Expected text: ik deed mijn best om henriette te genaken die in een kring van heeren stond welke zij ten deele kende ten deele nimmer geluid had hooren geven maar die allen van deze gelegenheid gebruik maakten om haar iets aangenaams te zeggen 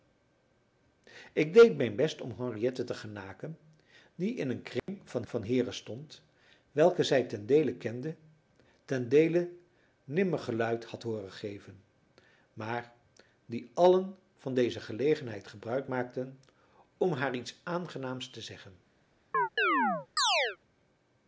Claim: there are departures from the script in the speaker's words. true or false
true